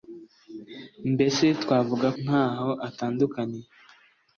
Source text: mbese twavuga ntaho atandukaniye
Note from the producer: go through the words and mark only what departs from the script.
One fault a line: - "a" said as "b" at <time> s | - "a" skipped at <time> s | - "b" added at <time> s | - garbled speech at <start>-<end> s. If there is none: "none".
none